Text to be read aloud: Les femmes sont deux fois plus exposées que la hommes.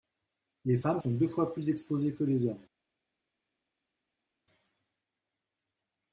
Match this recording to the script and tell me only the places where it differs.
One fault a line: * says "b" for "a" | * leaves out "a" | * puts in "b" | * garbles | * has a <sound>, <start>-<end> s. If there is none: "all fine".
* says "les" for "la"